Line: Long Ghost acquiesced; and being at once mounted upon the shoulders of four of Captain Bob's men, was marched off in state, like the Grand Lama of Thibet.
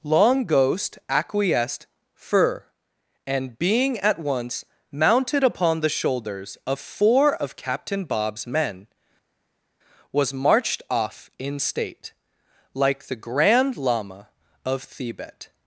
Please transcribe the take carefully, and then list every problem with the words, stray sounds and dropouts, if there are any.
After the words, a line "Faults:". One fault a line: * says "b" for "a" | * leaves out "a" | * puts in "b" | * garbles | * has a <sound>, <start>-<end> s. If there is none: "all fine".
Long Ghost acquiesced; fur and being at once mounted upon the shoulders of four of Captain Bob's men, was marched off in state, like the Grand Lama of Thibet.
Faults:
* puts in "fur"